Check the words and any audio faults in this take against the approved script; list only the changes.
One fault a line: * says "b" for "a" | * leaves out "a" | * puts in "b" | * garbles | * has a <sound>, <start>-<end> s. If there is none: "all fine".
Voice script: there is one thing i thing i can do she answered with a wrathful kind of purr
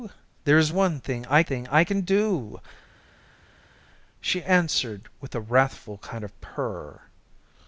all fine